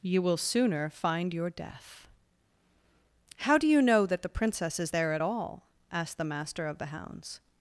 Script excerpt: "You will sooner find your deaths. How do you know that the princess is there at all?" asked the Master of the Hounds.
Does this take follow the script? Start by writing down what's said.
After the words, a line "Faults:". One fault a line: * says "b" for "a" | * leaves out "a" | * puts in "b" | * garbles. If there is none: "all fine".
"You will sooner find your death. How do you know that the princess is there at all?" asked the Master of the Hounds.
Faults:
* says "death" for "deaths"